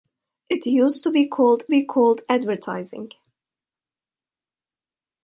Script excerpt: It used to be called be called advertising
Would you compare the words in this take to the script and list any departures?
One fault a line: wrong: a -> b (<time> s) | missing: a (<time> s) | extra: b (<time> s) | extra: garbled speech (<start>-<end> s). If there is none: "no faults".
no faults